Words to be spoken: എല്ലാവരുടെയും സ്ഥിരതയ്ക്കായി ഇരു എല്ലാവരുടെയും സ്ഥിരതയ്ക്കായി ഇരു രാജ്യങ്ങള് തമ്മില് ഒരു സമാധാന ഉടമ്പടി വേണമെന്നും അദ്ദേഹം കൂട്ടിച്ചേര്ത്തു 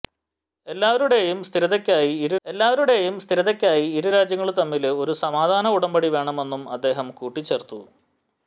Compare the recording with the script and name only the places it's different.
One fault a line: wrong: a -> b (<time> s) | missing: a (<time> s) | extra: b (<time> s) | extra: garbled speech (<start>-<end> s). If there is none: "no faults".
no faults